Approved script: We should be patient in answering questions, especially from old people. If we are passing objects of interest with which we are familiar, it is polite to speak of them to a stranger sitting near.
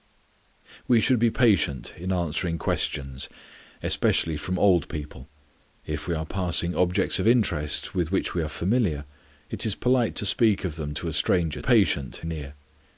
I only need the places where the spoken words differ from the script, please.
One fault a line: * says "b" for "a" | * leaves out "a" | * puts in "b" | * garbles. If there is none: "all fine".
* says "patient" for "sitting"